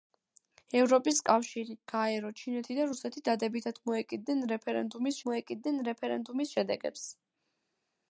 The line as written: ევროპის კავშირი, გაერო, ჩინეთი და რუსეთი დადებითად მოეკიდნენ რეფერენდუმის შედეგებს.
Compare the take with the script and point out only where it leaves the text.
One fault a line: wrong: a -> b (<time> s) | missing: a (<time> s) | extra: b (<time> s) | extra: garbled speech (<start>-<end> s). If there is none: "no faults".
extra: მოეკიდნენ რეფერენდუმის (5.3 s)